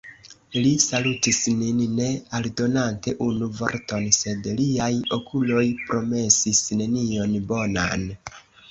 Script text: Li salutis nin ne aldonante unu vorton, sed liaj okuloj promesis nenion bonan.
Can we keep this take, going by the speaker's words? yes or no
yes